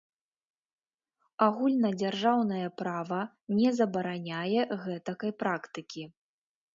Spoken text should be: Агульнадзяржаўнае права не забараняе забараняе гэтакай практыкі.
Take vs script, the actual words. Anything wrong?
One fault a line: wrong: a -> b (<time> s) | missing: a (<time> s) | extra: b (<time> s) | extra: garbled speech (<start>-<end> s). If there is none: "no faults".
missing: забараняе (4.6 s)